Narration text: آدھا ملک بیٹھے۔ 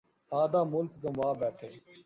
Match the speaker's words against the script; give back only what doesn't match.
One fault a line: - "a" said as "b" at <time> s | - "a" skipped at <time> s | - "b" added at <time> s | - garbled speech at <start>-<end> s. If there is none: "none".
- "گنوا" added at 1.0 s